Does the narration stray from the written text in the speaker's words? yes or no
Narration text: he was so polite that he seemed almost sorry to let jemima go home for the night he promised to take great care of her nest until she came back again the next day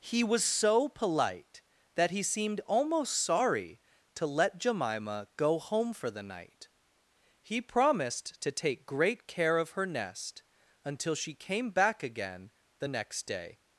no